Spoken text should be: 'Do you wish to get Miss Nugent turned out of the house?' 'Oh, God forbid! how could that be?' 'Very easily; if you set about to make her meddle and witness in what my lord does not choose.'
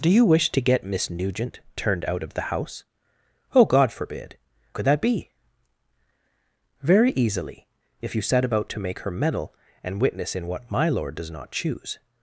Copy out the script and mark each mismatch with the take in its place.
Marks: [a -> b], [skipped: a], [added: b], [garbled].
'Do you wish to get Miss Nugent turned out of the house?' 'Oh, God forbid! [skipped: how] could that be?' 'Very easily; if you set about to make her meddle and witness in what my lord does not choose.'